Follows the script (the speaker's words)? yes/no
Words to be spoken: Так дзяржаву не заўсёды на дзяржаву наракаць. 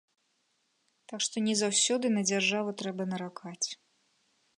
no